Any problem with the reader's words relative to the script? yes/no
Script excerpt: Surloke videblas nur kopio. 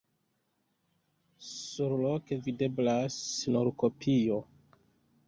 no